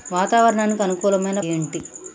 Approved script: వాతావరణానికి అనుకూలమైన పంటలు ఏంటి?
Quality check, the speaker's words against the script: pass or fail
fail